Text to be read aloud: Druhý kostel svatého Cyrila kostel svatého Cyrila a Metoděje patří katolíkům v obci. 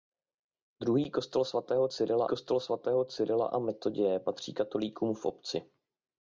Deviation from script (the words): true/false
false